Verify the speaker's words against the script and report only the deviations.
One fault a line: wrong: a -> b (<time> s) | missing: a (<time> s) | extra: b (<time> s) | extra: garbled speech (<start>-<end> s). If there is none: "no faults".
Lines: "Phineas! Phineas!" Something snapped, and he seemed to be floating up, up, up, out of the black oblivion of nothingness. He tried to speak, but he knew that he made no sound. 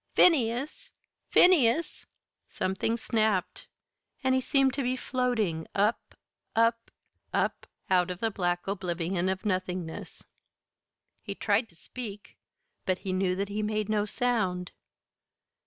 no faults